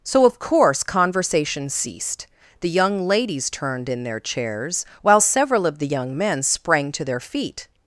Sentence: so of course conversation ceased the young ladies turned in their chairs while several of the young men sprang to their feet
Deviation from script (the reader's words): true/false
false